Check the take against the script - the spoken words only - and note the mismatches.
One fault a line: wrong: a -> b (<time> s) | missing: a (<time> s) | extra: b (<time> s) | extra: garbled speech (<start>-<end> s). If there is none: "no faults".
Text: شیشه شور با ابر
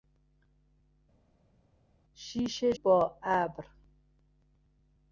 missing: شور (2.7 s)